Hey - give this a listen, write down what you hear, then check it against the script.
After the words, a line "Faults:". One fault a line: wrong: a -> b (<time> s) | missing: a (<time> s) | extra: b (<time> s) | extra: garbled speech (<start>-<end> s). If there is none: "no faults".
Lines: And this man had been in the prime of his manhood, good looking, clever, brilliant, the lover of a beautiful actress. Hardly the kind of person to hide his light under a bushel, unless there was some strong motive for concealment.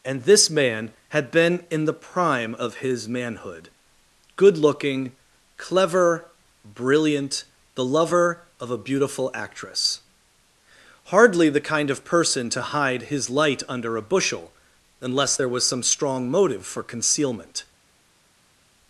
And this man had been in the prime of his manhood, good looking, clever, brilliant, the lover of a beautiful actress. Hardly the kind of person to hide his light under a bushel, unless there was some strong motive for concealment.
Faults:
no faults